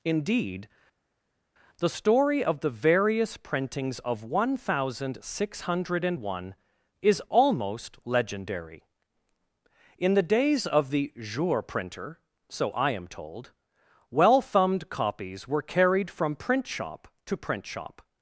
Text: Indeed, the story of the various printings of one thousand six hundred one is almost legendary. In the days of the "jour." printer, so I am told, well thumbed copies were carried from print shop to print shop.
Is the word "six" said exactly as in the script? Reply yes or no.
yes